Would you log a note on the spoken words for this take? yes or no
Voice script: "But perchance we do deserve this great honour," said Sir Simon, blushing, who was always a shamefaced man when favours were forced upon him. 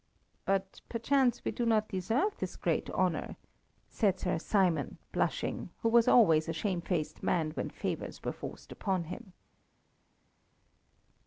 yes